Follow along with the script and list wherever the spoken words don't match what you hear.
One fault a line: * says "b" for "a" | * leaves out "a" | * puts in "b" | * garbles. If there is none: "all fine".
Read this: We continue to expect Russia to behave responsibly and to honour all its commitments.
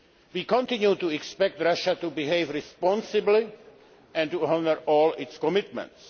all fine